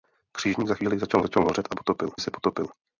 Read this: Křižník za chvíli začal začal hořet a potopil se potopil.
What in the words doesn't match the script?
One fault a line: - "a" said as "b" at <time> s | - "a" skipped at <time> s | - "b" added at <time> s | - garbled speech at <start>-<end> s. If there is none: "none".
none